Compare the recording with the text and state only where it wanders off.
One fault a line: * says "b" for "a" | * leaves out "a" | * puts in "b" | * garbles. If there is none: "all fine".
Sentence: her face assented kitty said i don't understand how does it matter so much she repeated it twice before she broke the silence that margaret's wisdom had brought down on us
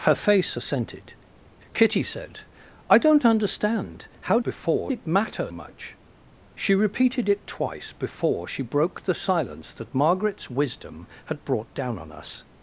* says "before" for "does"
* leaves out "so"